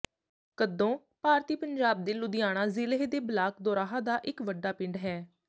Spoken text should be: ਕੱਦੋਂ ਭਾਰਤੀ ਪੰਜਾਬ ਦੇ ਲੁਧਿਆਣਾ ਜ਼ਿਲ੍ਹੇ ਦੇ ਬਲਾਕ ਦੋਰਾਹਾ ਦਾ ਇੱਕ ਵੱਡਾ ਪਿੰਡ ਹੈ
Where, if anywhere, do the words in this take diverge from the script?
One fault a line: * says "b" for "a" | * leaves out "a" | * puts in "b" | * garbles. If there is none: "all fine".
all fine